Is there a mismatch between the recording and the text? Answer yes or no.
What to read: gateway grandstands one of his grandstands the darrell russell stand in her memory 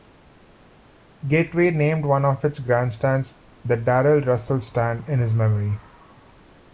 yes